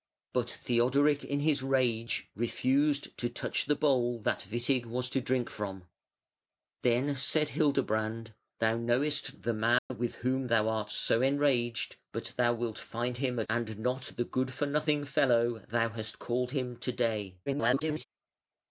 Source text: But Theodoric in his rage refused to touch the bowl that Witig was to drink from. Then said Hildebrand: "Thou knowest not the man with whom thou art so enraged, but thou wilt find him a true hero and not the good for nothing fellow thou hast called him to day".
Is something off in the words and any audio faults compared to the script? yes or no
yes